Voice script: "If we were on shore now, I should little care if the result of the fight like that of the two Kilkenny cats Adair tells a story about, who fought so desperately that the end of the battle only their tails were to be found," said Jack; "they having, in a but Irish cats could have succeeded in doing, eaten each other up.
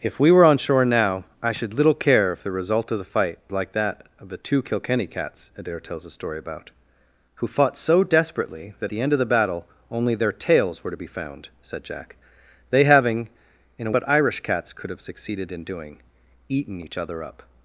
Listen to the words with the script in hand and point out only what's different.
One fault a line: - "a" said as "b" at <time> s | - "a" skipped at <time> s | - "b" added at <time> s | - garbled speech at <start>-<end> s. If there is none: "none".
none